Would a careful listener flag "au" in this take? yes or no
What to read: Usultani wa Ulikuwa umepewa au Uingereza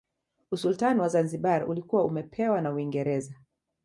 yes